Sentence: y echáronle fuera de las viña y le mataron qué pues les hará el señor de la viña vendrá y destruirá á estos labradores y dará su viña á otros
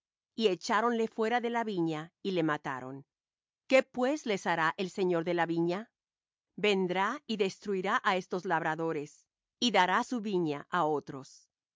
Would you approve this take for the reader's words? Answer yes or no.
no